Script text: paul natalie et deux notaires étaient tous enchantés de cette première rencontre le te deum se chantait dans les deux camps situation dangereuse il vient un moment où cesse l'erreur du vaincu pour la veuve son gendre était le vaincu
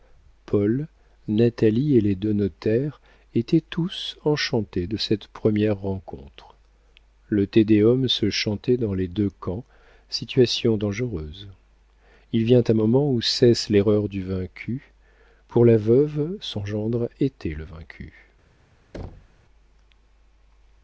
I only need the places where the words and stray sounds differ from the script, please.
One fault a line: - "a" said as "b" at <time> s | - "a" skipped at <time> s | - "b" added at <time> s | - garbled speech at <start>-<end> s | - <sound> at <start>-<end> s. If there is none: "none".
- "les" added at 2.0 s
- thud at 18.9-19.4 s